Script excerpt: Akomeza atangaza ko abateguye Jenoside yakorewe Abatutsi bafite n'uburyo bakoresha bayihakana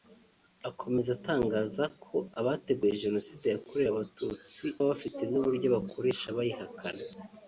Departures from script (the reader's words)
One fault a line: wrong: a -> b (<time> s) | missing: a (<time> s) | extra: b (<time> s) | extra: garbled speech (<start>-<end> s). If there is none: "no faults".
no faults